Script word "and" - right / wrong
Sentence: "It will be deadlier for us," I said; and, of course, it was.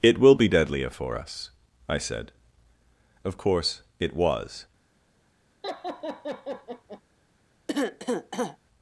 wrong